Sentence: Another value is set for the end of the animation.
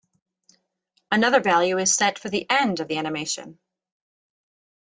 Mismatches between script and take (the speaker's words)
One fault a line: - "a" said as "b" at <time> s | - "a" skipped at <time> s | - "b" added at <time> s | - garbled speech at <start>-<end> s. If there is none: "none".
none